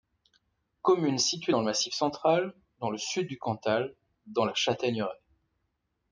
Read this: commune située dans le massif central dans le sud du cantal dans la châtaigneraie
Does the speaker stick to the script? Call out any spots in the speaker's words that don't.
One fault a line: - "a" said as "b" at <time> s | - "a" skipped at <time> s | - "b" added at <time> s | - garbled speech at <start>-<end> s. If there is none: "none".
none